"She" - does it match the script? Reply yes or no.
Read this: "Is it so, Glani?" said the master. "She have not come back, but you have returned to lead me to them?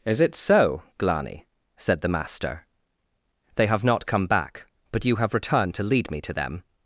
no